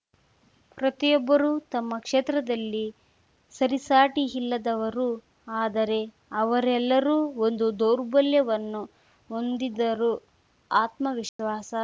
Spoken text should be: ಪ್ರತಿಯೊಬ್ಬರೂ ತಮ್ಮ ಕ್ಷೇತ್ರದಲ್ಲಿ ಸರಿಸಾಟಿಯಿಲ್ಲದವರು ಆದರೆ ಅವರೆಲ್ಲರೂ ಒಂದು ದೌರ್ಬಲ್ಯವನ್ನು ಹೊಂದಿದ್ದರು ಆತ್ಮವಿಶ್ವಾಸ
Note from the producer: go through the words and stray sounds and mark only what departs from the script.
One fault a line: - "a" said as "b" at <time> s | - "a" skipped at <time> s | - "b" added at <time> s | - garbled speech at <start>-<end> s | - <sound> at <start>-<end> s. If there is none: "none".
- dropout at 11.3-11.4 s